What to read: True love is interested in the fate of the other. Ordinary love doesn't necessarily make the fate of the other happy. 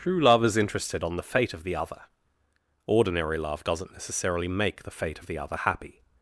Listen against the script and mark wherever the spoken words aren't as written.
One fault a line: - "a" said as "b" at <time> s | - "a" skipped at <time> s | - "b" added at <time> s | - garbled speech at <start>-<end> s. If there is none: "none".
- "in" said as "on" at 1.0 s